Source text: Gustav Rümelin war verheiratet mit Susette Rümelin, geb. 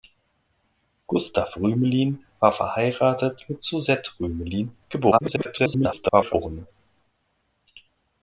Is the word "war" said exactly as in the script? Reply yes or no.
yes